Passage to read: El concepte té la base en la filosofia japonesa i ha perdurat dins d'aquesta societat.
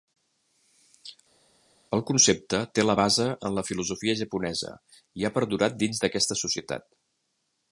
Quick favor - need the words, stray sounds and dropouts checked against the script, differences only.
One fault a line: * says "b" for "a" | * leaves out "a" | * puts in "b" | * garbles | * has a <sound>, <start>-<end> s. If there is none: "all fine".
all fine